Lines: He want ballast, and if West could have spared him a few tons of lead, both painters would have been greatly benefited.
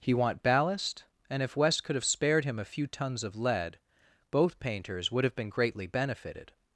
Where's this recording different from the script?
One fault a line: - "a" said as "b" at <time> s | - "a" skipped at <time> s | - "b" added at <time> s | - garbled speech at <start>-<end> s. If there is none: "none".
none